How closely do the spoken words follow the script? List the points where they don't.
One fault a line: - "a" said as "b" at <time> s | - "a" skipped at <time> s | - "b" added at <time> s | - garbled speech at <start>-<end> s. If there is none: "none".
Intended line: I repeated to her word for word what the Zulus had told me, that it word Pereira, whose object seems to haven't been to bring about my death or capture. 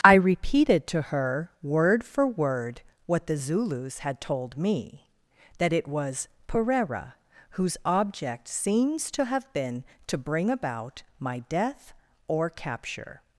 - "word" said as "was" at 5.9 s
- "haven't" said as "have" at 9.3 s